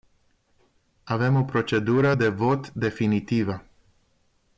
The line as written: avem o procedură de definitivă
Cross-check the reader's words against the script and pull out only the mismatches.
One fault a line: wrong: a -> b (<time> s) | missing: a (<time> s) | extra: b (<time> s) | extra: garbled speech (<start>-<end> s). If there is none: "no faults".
extra: vot (2.3 s)